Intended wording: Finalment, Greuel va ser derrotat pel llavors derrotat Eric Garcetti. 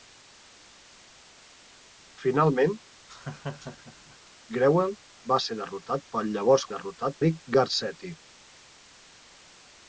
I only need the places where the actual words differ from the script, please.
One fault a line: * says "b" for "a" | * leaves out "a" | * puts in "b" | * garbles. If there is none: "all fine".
all fine